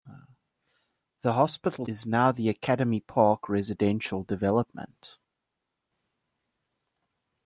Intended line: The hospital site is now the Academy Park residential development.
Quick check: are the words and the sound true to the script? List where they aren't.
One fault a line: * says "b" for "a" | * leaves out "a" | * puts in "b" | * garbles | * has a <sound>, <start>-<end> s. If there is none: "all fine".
* leaves out "site"